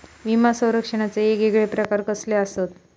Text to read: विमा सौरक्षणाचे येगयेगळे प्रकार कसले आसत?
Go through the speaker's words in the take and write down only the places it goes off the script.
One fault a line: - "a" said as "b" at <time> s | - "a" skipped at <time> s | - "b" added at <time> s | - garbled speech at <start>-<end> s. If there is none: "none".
none